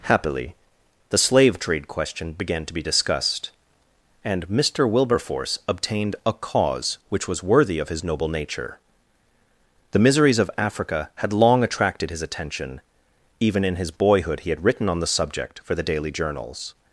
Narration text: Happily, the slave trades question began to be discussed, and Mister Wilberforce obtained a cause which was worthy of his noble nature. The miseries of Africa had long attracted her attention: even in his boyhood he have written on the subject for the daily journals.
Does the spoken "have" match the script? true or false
false